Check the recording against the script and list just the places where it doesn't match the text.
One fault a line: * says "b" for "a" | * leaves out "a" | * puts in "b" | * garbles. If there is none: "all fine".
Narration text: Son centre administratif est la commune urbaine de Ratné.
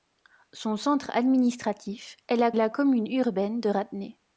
* puts in "la"